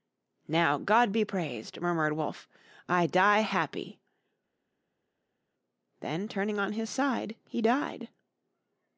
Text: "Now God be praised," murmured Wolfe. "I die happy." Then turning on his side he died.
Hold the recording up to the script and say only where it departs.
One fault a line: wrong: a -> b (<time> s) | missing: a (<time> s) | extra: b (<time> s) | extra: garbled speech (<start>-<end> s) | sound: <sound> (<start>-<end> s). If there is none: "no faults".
no faults